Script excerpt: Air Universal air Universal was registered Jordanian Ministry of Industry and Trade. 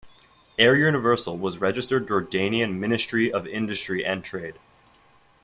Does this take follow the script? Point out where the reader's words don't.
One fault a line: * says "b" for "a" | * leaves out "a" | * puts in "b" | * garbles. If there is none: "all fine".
* leaves out "air Universal"